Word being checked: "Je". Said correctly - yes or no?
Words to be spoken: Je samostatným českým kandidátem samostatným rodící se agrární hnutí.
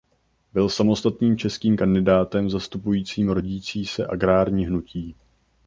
no